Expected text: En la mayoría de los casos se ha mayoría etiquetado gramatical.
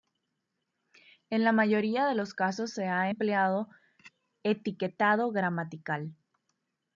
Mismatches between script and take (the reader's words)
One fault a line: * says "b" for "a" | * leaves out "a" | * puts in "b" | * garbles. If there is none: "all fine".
* says "empleado" for "mayoría"